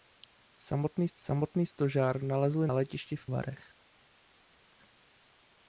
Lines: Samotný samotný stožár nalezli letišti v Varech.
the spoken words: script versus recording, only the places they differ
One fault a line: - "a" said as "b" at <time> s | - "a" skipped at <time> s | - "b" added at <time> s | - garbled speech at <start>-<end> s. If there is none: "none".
none